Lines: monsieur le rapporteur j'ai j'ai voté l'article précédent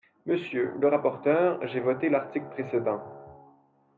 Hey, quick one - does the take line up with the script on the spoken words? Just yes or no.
no